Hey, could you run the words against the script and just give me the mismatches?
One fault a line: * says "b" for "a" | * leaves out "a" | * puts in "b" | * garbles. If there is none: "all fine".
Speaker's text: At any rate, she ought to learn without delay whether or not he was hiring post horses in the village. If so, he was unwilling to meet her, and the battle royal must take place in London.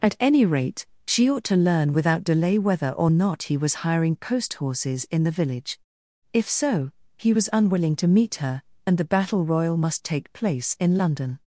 all fine